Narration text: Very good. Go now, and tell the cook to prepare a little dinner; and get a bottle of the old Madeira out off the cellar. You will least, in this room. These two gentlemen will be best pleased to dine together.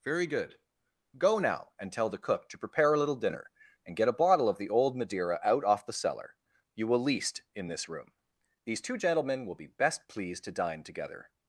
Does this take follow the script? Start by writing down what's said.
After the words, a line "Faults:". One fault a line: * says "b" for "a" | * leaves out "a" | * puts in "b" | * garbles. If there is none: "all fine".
Very good. Go now, and tell the cook to prepare a little dinner; and get a bottle of the old Madeira out off the cellar. You will least, in this room. These two gentlemen will be best pleased to dine together.
Faults:
all fine